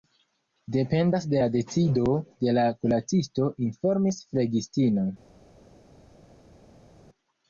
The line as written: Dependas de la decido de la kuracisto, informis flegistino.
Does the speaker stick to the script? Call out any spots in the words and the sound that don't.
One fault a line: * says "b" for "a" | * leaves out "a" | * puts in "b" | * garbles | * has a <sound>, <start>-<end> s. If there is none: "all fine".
all fine